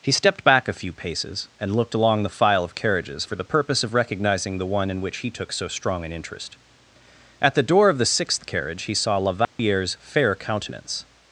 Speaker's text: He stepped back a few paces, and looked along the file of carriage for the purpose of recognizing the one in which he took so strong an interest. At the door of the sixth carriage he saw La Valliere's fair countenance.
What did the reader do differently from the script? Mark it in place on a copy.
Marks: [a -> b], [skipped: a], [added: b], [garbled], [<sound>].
He stepped back a few paces, and looked along the file of [carriage -> carriages] for the purpose of recognizing the one in which he took so strong an interest. At the door of the sixth carriage he saw La Valliere's [dropout] fair countenance.